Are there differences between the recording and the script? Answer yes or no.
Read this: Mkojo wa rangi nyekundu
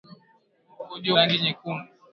yes